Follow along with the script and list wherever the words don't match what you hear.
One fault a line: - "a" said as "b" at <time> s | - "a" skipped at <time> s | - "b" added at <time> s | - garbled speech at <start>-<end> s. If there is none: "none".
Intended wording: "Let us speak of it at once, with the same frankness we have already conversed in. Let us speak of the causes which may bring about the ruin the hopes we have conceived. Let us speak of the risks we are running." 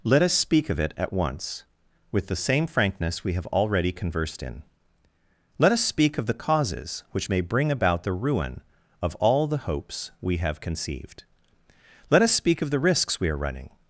- "of all" added at 9.0 s